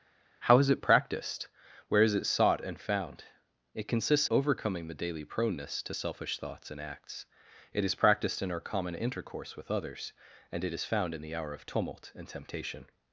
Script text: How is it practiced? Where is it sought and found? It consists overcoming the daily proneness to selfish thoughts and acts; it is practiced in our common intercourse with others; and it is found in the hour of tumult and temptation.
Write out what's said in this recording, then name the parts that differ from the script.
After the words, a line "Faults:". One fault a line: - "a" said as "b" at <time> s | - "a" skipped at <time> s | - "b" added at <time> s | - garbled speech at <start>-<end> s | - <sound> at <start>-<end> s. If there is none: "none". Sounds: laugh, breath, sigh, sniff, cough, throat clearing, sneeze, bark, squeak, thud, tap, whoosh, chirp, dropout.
How is it practiced? Where is it sought and found? It consists overcoming the daily proneness to selfish thoughts and acts; it is practiced in our common intercourse with others; and it is found in the hour of tumult and temptation.
Faults:
none